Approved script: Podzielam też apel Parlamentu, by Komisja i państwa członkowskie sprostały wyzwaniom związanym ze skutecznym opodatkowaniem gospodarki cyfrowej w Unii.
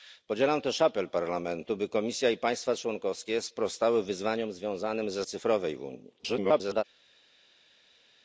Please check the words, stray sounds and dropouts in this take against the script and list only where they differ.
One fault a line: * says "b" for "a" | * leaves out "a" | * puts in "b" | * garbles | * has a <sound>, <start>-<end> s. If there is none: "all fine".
* leaves out "skutecznym opodatkowaniem gospodarki"
* garbles